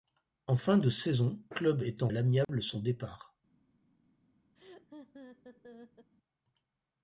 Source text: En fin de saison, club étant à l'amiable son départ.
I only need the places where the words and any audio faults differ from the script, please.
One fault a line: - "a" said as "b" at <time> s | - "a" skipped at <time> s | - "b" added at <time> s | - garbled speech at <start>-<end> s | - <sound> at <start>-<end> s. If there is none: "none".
- dropout at 2.4-2.5 s
- laugh at 4.5-6.1 s